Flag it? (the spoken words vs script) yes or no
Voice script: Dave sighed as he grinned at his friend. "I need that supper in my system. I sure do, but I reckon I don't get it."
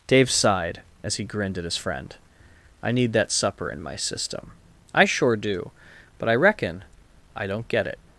no